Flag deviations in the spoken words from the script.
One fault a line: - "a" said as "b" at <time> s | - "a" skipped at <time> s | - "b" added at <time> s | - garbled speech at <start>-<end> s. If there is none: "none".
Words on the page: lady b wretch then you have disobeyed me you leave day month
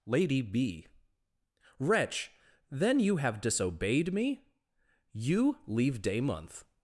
none